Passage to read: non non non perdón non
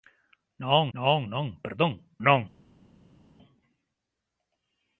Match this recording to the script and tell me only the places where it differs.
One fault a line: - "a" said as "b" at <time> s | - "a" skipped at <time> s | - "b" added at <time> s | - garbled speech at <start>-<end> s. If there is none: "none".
none